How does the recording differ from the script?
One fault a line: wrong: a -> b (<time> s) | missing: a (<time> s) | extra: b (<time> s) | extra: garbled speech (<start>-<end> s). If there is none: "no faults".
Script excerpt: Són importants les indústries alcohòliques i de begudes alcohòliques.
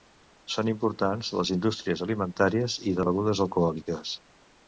wrong: alcohòliques -> alimentàries (2.1 s)